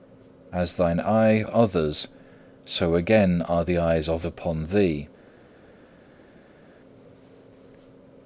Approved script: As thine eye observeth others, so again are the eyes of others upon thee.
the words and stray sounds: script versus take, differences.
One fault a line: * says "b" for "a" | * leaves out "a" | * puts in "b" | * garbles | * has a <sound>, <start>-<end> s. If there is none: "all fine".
* leaves out "observeth"
* leaves out "others"